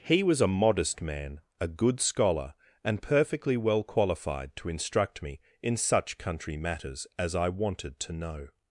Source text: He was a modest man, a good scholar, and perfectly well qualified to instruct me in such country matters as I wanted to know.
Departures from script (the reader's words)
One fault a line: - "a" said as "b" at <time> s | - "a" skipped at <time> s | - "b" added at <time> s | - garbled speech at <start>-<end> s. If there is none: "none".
none